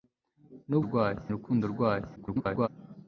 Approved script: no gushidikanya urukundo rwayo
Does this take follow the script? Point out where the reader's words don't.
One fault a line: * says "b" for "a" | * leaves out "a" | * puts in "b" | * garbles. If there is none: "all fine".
* says "rwayo" for "gushidikanya"
* garbles